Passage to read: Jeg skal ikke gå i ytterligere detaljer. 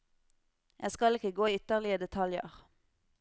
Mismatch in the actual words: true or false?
false